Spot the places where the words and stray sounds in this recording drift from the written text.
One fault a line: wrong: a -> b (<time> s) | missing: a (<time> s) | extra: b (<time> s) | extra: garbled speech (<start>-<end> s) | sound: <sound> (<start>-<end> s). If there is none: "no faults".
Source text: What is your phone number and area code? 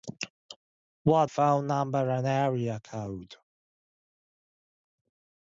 missing: is your (1.3 s)